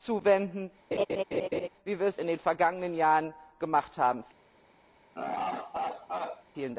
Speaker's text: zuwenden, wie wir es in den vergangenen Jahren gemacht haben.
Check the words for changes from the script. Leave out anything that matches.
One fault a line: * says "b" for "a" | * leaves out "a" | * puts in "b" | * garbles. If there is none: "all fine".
all fine